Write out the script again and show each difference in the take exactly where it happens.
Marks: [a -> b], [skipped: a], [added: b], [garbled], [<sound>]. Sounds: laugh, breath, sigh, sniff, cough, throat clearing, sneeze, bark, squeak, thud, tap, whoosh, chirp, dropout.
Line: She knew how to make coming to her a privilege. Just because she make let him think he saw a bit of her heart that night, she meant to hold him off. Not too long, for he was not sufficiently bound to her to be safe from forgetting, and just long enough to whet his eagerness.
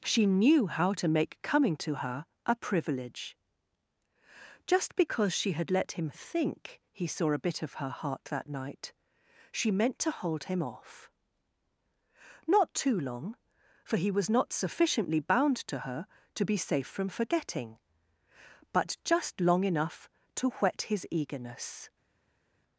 She knew how to make coming to her a privilege. Just because she [make -> had] let him think he saw a bit of her heart that night, she meant to hold him off. Not too long, for he was not sufficiently bound to her to be safe from forgetting, [and -> but] just long enough to whet his eagerness.